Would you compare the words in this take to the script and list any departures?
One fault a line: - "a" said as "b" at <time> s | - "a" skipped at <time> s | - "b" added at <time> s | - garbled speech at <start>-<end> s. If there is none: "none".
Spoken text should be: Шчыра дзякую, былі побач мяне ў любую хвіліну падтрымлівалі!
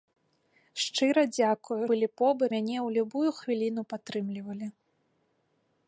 none